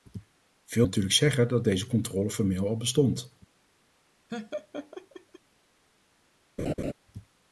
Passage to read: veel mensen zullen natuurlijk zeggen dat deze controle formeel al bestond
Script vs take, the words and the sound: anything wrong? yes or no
yes